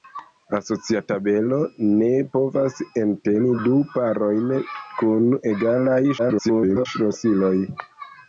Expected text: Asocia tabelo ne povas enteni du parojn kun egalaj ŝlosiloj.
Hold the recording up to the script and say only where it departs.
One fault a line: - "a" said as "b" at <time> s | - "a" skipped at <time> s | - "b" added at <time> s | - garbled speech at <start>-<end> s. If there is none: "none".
- garbled speech at 6.2-6.9 s